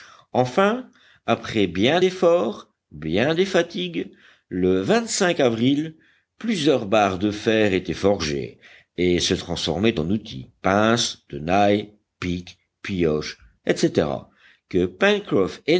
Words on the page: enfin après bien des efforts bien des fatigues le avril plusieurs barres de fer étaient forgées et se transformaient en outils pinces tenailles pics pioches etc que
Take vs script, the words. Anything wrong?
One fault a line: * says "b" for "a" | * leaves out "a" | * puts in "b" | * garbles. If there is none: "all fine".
* leaves out "des"